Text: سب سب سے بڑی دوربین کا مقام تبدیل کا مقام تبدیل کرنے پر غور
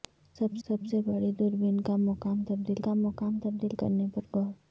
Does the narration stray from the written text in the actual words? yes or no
no